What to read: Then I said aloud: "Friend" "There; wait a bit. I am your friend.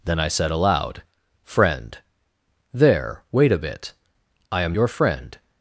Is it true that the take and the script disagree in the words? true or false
false